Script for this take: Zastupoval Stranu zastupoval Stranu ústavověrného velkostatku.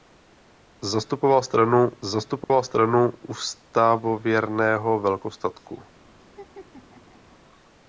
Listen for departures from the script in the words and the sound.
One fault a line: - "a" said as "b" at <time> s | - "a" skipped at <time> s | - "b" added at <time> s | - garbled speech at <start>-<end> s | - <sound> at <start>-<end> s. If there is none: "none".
- dropout at 2.4-2.5 s
- laugh at 6.2-7.4 s